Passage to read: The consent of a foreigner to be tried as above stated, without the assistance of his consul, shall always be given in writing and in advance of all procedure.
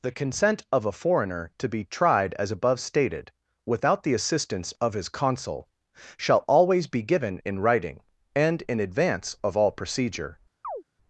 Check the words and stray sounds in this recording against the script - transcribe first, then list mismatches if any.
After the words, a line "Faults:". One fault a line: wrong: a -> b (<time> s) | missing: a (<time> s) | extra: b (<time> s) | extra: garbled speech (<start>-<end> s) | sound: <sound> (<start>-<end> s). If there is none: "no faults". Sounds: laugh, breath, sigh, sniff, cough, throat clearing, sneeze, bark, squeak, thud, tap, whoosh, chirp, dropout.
The consent of a foreigner to be tried as above stated, without the assistance of his consul, shall always be given in writing and in advance of all procedure.
Faults:
sound: chirp (10.6-10.8 s)